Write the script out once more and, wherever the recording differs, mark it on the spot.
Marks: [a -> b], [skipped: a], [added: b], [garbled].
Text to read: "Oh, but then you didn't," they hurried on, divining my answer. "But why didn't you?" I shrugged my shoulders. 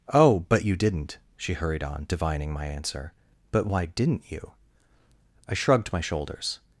"Oh, but [skipped: then] you didn't," [they -> she] hurried on, divining my answer. "But why didn't you?" I shrugged my shoulders.